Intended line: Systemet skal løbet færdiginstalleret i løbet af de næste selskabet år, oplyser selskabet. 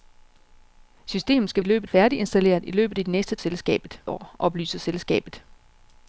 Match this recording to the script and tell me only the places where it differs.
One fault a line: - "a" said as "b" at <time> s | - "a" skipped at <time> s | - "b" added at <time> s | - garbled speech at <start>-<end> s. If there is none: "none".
none